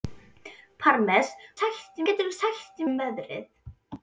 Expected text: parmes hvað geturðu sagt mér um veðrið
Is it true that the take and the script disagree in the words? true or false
true